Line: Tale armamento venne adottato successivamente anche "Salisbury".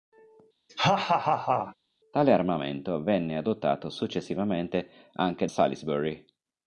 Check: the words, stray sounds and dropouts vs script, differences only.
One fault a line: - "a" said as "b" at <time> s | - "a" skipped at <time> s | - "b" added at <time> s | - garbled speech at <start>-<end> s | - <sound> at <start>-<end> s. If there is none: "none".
- laugh at 0.7-1.8 s